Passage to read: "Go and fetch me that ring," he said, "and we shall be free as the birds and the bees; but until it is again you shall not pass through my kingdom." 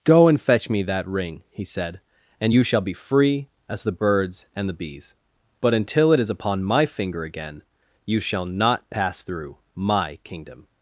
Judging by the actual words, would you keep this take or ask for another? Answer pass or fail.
fail